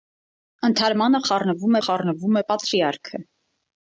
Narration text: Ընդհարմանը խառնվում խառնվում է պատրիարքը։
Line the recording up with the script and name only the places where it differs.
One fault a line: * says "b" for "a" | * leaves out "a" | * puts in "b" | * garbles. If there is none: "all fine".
all fine